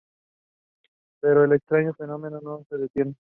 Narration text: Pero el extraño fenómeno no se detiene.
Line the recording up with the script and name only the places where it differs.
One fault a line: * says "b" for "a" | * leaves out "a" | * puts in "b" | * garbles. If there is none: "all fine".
all fine